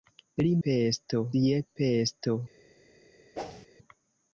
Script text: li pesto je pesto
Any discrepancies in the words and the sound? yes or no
yes